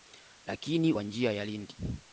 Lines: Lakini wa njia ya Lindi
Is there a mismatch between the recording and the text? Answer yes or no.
no